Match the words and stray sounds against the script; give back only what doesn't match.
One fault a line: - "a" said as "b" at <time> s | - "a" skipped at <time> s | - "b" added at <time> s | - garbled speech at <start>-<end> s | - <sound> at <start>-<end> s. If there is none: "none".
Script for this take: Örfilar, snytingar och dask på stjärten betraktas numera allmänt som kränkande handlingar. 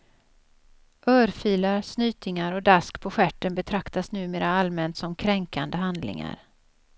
none